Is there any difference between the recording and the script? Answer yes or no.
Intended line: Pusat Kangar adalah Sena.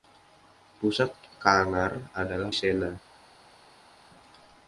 no